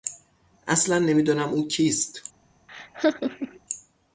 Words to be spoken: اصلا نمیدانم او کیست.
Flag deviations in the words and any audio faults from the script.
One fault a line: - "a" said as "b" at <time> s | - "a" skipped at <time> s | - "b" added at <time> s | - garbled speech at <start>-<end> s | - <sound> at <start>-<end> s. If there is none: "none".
- laugh at 2.7-3.6 s